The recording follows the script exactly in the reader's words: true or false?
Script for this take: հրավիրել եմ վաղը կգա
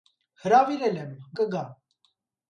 false